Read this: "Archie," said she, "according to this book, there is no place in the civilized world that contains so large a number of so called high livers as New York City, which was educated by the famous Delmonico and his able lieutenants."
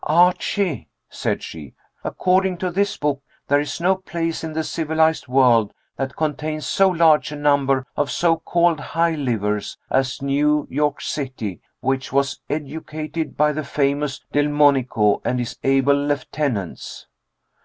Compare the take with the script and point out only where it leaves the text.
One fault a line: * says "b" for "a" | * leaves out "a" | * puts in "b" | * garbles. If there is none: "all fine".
all fine